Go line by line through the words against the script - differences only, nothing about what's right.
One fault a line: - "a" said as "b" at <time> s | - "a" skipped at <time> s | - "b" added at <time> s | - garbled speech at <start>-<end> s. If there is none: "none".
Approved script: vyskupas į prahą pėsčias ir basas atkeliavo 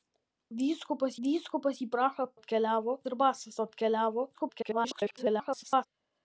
- "vyskupas" added at 1.3 s
- "pėsčias" said as "atkeliavo" at 2.4 s
- garbled speech at 4.3-5.9 s